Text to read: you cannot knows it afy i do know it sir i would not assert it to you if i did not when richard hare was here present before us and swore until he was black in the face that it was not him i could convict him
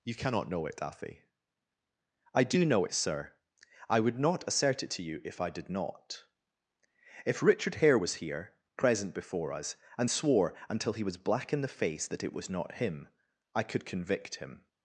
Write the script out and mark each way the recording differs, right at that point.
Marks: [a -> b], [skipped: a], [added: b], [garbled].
you cannot [knows -> know] it afy i do know it sir i would not assert it to you if i did not [when -> if] richard hare was here present before us and swore until he was black in the face that it was not him i could convict him